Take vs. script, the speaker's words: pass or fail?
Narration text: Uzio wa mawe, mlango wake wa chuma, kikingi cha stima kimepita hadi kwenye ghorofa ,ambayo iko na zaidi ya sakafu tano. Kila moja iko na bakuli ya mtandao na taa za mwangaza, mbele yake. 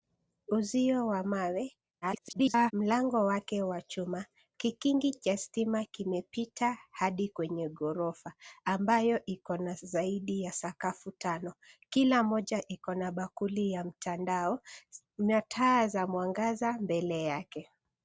fail